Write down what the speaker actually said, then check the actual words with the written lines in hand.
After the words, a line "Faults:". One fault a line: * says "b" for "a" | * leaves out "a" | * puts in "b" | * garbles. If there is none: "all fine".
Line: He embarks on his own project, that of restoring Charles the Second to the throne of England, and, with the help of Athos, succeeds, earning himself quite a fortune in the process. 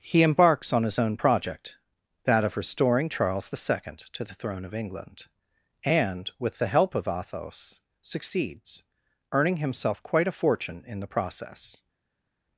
He embarks on his own project, that of restoring Charles the Second to the throne of England, and, with the help of Athos, succeeds, earning himself quite a fortune in the process.
Faults:
all fine